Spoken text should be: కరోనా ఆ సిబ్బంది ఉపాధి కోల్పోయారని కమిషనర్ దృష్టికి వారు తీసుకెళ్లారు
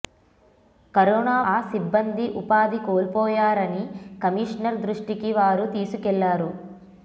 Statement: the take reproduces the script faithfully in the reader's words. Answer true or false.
true